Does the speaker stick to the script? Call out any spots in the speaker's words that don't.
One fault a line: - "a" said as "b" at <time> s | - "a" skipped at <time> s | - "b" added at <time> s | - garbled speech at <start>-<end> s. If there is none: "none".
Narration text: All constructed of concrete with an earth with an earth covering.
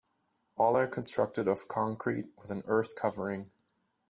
- "are" added at 0.8 s
- "with an earth" skipped at 3.0 s